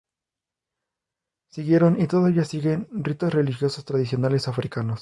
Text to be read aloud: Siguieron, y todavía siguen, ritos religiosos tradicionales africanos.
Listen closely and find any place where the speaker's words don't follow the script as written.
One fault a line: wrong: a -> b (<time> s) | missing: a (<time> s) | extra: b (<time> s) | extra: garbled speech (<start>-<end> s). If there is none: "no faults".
no faults